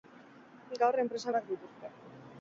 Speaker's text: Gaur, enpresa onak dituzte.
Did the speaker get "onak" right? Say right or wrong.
right